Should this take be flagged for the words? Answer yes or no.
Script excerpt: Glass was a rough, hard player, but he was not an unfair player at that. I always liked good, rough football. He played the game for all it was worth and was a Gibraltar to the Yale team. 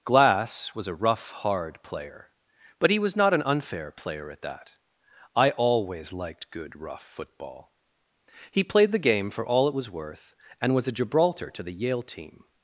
no